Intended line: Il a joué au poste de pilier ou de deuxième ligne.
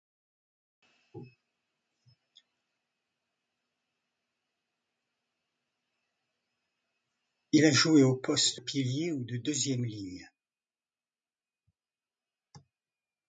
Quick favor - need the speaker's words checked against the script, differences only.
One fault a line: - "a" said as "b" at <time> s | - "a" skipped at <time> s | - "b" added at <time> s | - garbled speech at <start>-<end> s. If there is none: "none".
- "de" skipped at 8.6 s